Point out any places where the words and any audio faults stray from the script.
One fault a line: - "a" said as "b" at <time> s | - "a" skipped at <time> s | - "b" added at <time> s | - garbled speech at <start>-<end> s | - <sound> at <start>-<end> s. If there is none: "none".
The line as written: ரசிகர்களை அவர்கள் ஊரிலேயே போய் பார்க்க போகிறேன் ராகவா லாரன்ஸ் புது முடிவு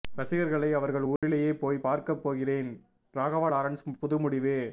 - dropout at 1.2-1.2 s